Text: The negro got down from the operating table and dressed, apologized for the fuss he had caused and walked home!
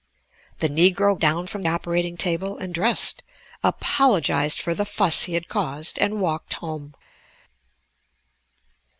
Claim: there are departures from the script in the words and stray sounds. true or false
true